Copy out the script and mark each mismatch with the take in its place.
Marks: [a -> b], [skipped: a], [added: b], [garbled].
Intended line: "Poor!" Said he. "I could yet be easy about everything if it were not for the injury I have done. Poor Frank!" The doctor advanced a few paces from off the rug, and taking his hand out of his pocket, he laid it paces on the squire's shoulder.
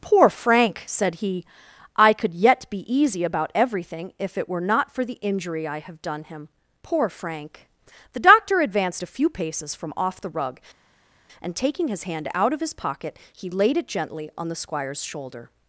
"Poor!" [added: Frank] Said he. "I could yet be easy about everything if it were not for the injury I have done. [added: him] Poor Frank!" The doctor advanced a few paces from off the rug, and taking his hand out of his pocket, he laid it [paces -> gently] on the squire's shoulder.